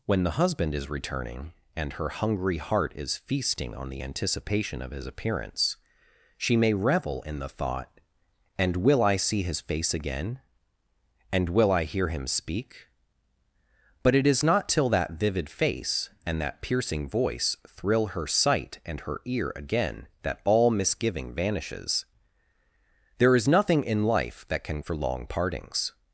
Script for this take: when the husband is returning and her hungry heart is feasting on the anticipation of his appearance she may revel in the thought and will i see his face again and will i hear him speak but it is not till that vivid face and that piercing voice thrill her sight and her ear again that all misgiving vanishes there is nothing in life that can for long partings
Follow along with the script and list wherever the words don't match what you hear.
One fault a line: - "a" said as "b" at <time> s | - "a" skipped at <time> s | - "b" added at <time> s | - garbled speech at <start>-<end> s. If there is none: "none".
none